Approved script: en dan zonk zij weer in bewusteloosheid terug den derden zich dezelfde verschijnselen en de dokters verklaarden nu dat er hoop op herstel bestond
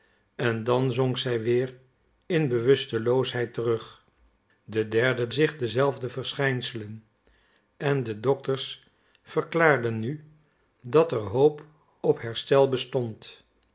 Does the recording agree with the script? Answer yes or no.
yes